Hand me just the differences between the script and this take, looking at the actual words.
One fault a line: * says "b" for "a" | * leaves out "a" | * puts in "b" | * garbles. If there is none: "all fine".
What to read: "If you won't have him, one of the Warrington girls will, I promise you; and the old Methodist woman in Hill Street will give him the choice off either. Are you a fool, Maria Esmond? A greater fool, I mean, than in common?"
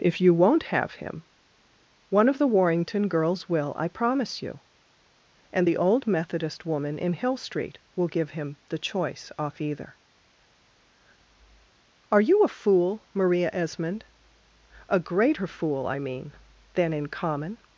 all fine